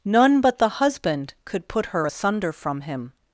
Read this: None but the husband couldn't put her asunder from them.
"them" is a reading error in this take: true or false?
true